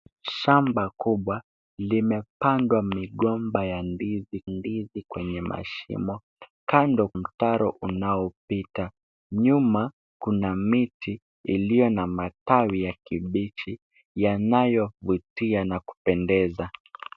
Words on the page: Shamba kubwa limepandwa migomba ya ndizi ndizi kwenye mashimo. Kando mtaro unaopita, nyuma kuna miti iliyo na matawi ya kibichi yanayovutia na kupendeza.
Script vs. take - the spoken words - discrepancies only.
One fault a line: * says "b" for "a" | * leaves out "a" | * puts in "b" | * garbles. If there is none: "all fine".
all fine